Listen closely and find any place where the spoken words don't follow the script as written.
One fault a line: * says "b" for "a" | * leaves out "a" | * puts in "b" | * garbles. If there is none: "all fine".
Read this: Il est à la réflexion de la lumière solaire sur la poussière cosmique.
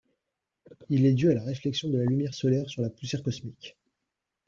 * puts in "dû"